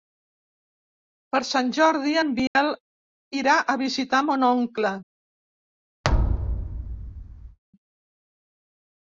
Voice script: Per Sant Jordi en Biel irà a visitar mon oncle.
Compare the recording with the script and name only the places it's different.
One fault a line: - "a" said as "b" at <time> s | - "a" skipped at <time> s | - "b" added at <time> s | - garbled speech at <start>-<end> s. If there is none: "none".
none